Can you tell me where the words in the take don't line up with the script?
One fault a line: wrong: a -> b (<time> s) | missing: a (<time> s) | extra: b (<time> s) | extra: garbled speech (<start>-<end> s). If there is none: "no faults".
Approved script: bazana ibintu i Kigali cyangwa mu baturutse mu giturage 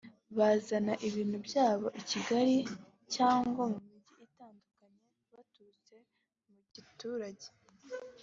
extra: byabo (1.5 s)
extra: mijyi itandukanye (3.9 s)